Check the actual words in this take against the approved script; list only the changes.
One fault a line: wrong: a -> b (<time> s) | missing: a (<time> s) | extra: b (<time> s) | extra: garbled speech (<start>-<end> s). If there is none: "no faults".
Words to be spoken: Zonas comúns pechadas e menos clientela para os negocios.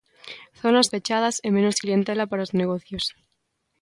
missing: comúns (0.9 s)